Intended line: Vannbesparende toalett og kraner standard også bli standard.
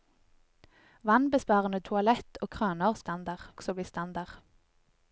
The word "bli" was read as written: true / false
true